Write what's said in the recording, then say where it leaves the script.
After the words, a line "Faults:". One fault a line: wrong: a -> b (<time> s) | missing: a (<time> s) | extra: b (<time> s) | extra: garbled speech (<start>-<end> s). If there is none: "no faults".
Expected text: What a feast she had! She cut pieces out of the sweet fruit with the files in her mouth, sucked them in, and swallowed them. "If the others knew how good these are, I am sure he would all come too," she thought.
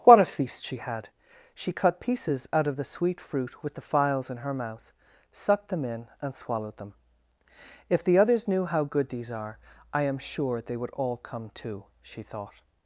What a feast she had! She cut pieces out of the sweet fruit with the files in her mouth, sucked them in, and swallowed them. "If the others knew how good these are, I am sure they would all come too," she thought.
Faults:
wrong: he -> they (10.6 s)